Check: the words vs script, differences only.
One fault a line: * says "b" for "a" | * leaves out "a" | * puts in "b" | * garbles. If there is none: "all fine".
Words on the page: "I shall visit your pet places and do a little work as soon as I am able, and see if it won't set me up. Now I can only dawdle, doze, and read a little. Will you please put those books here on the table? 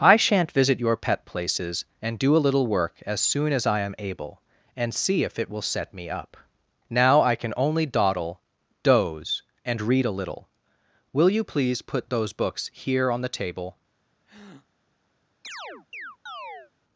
* says "shan't" for "shall"
* says "will" for "won't"